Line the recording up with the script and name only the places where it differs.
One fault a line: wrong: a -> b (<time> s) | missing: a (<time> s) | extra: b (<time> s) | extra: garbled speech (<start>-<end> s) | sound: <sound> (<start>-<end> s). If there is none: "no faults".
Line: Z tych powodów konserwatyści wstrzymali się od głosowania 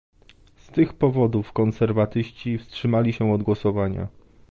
no faults